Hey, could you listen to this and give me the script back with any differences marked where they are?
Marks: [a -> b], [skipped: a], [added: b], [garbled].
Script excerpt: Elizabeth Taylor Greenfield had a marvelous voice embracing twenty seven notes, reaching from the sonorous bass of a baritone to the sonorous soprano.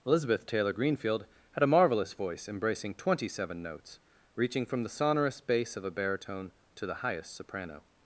Elizabeth Taylor Greenfield had a marvelous voice embracing twenty seven notes, reaching from the sonorous bass of a baritone to the [sonorous -> highest] soprano.